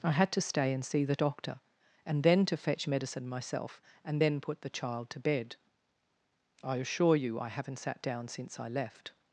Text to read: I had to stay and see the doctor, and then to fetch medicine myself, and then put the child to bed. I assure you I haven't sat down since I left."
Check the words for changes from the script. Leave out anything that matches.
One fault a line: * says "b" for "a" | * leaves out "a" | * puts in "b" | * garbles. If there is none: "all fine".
all fine